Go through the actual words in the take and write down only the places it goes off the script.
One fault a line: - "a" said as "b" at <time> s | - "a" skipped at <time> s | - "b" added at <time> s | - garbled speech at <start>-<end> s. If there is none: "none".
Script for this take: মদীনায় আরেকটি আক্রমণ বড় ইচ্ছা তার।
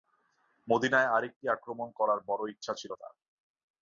- "করার" added at 1.9 s
- "ছিল" added at 2.7 s